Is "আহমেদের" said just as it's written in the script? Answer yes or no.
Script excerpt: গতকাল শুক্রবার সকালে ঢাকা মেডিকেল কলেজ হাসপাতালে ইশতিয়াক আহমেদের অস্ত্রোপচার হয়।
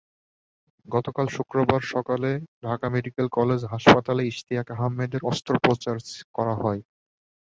yes